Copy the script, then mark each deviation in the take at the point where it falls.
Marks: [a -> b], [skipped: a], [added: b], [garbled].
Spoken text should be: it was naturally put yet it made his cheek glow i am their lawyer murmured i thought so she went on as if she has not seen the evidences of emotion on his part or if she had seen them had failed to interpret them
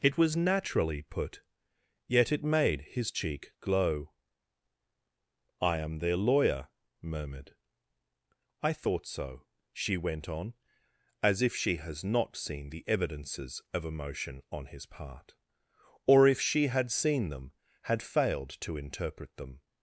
it was naturally put yet it made his cheek glow i am their lawyer murmured i thought so she went on as if she has not seen the evidences of emotion on his part or if she had seen them had failed to interpret them